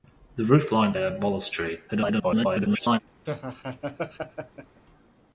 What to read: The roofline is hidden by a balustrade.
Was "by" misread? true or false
true